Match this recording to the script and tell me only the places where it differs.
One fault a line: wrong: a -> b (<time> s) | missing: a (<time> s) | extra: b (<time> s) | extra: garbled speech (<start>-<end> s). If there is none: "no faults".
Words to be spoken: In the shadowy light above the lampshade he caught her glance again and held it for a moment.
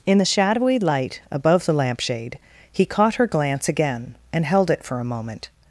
no faults